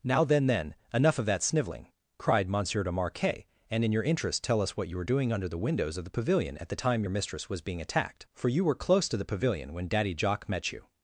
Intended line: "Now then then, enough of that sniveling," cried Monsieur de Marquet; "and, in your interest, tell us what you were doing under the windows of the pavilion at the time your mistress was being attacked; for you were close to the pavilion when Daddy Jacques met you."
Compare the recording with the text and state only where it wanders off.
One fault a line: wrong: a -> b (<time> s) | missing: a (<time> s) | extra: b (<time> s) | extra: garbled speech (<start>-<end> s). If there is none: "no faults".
no faults